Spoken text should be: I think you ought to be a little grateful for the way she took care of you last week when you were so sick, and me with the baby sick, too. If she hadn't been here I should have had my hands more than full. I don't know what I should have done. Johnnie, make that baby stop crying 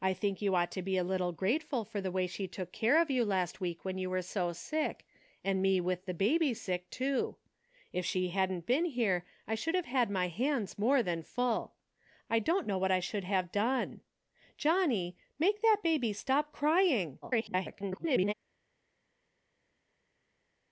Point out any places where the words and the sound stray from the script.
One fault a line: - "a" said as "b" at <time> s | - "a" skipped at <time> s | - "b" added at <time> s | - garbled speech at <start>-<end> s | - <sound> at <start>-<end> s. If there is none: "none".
- garbled speech at 17.2-18.3 s